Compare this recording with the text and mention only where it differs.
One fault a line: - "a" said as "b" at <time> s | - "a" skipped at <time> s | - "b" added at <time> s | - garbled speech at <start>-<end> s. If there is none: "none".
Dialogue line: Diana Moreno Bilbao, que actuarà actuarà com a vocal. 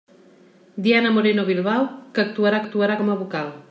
none